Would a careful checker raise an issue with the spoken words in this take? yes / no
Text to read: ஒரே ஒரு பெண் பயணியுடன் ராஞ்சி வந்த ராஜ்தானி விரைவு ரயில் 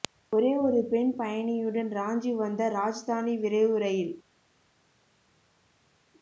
no